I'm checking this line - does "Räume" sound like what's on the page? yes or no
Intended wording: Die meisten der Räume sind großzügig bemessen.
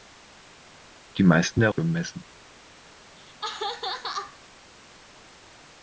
no